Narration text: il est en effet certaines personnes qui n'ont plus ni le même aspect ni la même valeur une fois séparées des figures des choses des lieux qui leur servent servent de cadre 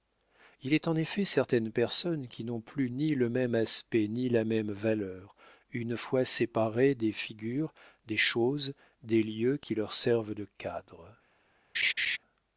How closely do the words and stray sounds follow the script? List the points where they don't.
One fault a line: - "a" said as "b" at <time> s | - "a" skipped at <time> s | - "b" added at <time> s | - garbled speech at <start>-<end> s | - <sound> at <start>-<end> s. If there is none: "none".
- "servent" skipped at 10.3 s
- laugh at 11.7-12.2 s